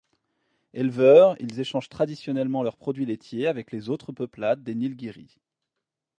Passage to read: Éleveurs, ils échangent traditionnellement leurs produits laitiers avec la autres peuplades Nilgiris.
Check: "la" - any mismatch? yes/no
yes